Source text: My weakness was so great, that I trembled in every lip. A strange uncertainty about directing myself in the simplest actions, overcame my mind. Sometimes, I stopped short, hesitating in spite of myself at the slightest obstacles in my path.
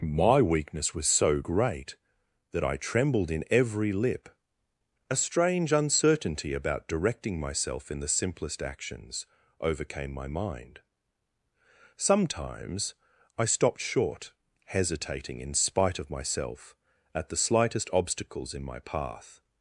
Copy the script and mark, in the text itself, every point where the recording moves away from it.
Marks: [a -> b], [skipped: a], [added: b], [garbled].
My weakness was so great, that I trembled in every lip. A strange uncertainty about directing myself in the simplest actions, overcame my mind. Sometimes, I stopped short, hesitating in spite of myself at the slightest obstacles in my path.